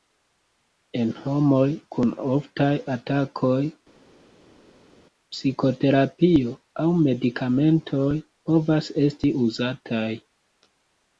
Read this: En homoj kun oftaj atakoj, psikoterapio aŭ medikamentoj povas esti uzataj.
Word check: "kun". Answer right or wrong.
right